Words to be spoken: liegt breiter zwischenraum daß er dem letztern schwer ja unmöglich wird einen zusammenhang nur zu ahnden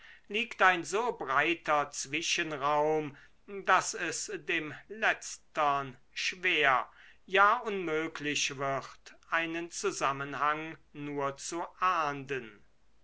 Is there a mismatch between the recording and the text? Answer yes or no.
yes